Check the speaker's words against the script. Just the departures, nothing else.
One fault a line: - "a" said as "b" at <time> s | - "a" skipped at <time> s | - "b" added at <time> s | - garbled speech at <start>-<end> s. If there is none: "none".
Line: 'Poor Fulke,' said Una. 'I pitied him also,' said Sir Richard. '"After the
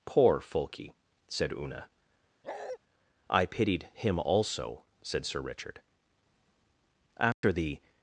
none